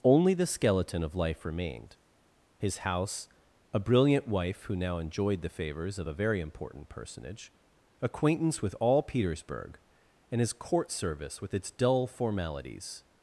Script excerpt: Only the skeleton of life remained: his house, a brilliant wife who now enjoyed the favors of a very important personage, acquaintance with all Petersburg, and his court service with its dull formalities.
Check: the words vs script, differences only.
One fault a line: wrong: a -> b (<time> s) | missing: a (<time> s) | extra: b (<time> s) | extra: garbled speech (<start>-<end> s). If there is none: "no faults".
no faults